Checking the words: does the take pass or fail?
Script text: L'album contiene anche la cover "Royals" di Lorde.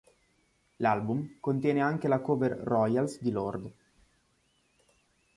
pass